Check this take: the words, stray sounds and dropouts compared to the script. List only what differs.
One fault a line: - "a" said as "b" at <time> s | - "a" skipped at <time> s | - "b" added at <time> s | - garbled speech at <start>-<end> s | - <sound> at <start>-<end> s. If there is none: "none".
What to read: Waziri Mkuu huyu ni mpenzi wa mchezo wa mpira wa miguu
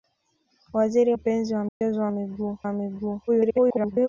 - "Mkuu huyu ni" skipped at 1.1 s
- dropout at 1.7-1.8 s
- "mpira" said as "miguu" at 2.1 s
- garbled speech at 3.3-4.1 s